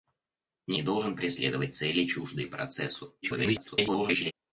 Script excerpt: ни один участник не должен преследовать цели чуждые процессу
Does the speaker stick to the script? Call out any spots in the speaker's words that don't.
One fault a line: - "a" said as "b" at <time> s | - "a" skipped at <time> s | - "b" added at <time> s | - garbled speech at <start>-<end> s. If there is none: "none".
- "один участник" skipped at 0.8 s
- garbled speech at 3.2-4.3 s